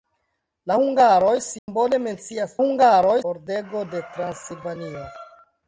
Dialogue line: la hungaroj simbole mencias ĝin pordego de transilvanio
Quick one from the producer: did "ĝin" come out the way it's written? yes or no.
no